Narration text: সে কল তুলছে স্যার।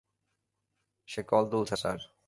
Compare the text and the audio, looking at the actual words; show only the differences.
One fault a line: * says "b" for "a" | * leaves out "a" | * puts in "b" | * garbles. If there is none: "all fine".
all fine